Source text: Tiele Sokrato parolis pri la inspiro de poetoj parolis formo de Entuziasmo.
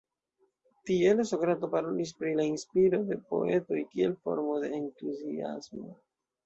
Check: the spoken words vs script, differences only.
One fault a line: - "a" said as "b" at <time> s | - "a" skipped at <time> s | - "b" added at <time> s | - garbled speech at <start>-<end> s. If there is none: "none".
- "parolis" said as "kiel" at 4.0 s